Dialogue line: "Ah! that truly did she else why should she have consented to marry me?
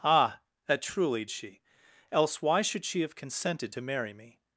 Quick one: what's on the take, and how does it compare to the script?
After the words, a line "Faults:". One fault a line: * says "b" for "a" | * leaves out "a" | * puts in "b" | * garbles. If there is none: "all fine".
"Ah! that truly she else why should she have consented to marry me?
Faults:
* leaves out "did"